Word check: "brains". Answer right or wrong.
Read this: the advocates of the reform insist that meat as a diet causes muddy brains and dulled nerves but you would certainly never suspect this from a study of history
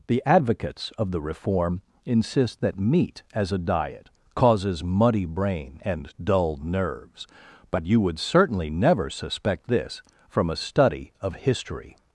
wrong